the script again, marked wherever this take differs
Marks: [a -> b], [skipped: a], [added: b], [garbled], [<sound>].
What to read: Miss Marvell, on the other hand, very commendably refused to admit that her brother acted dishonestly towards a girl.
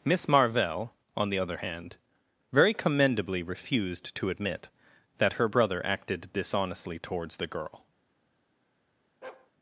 Miss Marvell, on the other hand, very commendably refused to admit that her brother acted dishonestly towards [a -> the] girl. [bark]